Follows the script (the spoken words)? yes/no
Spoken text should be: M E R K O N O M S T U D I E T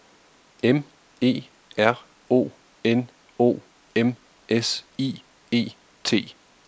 no